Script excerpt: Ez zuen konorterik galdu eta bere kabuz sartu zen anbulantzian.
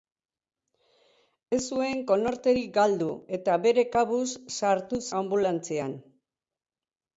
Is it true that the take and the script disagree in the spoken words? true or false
true